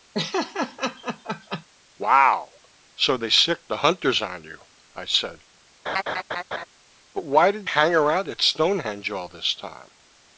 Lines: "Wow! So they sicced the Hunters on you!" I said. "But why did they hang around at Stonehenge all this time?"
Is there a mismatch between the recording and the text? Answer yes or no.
yes